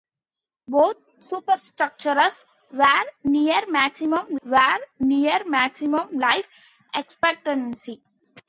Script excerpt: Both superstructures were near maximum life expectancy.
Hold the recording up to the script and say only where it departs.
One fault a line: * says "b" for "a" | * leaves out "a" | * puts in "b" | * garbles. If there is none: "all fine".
* puts in "were near maximum"